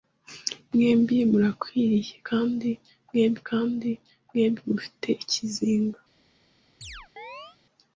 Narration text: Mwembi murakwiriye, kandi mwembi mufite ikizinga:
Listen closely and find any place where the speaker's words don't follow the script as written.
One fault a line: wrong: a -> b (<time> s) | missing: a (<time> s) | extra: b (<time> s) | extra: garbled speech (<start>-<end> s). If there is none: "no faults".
extra: kandi mwembi (3.5 s)